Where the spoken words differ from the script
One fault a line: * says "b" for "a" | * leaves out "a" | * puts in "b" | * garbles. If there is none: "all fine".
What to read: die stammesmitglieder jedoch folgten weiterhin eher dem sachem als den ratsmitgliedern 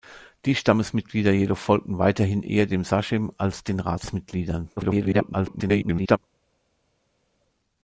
* garbles